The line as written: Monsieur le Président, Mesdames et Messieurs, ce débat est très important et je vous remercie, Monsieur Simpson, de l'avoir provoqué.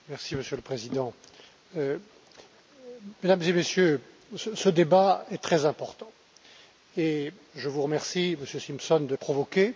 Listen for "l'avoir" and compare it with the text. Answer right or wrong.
wrong